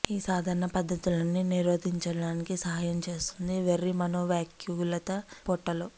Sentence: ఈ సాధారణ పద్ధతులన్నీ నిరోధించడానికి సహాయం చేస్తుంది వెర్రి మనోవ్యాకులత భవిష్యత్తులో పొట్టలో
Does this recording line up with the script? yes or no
no